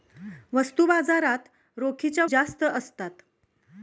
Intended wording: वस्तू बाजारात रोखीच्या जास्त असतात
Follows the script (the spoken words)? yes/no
yes